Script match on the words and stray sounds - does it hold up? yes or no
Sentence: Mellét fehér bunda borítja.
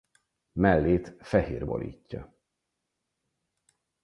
no